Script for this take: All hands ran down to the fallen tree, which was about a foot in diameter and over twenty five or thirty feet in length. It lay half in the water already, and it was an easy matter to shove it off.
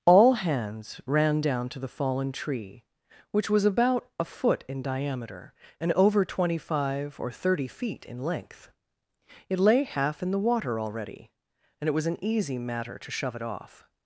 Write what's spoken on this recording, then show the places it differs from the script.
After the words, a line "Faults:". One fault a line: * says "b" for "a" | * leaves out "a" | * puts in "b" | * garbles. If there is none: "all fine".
All hands ran down to the fallen tree, which was about a foot in diameter and over twenty five or thirty feet in length. It lay half in the water already, and it was an easy matter to shove it off.
Faults:
all fine